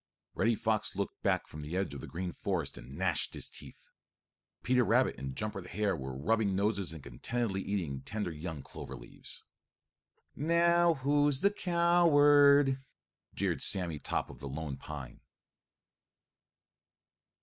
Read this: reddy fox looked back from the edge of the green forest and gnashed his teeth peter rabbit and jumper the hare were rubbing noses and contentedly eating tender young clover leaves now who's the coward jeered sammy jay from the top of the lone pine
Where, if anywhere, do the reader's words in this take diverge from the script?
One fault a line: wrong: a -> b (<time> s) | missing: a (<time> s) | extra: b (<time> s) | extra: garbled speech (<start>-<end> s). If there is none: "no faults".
missing: jay from (14.0 s)